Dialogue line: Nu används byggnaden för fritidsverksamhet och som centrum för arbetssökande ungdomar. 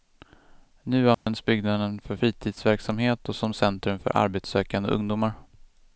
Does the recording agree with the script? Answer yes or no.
yes